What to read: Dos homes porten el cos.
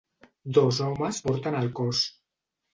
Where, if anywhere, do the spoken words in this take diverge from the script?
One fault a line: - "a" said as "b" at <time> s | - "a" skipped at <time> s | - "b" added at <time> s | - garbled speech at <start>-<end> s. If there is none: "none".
none